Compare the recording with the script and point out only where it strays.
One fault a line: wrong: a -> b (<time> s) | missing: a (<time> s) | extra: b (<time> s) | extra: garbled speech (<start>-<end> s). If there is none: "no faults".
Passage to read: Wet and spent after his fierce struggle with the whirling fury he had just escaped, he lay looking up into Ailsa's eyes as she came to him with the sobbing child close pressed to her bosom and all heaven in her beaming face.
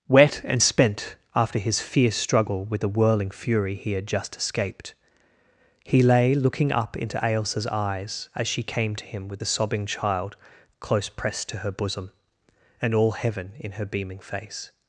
no faults